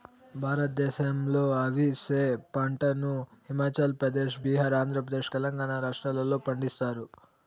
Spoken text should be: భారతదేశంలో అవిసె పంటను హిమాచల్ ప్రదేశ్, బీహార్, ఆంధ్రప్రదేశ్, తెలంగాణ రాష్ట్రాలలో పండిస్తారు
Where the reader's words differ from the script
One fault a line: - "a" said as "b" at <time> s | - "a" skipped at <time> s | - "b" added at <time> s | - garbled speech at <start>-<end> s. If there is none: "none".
none